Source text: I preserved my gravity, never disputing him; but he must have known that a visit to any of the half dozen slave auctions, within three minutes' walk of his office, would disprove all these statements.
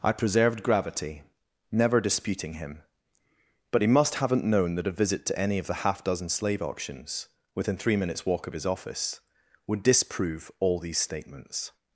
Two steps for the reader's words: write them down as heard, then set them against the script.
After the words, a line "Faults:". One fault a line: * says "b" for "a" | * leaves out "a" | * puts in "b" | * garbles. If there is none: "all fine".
I preserved gravity, never disputing him; but he must haven't known that a visit to any of the half dozen slave auctions, within three minutes' walk of his office, would disprove all these statements.
Faults:
* leaves out "my"
* says "haven't" for "have"